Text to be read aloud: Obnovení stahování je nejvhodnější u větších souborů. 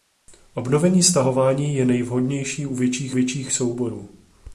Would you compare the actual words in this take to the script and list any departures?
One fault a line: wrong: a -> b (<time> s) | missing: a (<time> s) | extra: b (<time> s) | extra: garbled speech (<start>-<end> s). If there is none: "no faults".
extra: větších (3.1 s)